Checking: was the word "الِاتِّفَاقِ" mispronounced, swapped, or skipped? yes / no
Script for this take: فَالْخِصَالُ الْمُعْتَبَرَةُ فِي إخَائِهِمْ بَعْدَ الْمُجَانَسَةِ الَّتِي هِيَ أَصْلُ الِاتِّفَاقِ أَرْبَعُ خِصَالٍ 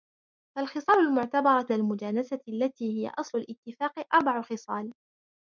no